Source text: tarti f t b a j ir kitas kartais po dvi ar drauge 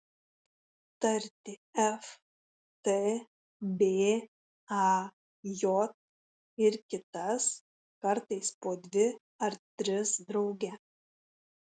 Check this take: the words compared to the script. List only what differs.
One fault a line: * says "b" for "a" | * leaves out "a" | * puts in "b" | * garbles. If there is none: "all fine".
* puts in "tris"